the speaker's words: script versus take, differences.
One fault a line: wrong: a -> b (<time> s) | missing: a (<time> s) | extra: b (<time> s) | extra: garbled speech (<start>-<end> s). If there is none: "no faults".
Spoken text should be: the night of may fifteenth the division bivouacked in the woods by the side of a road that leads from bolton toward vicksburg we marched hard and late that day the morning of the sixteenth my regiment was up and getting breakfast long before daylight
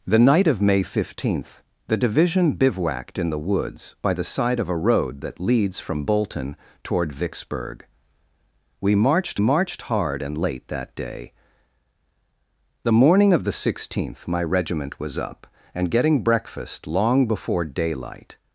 extra: marched (9.4 s)